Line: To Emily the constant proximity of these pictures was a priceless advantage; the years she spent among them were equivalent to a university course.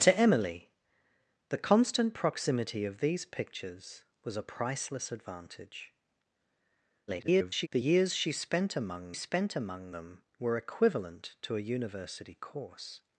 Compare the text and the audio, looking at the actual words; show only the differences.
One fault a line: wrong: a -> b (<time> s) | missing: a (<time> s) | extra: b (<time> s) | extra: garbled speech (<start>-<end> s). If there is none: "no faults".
extra: garbled speech (7.1-7.7 s)
extra: spent among (9.1 s)